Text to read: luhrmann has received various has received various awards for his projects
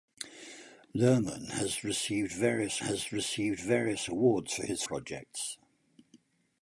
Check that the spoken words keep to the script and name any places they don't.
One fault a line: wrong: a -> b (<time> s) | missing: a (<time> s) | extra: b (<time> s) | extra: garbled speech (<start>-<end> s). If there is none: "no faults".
no faults